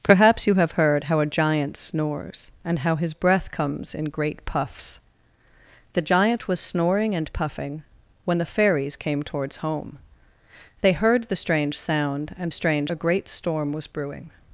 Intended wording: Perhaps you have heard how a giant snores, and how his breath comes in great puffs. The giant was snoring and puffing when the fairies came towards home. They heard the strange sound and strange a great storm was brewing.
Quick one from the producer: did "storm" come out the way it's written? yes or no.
yes